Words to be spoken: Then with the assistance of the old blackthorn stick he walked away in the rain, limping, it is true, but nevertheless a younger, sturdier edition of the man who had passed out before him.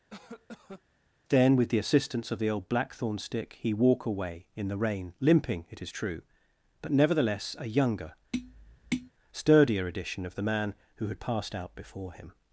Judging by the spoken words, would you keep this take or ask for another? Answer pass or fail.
fail